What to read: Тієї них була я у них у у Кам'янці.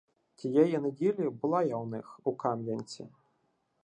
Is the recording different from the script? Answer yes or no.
yes